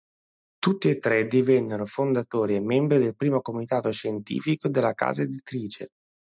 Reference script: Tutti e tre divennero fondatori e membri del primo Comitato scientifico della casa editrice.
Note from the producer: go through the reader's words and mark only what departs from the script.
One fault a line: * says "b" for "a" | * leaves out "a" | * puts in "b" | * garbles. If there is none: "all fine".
all fine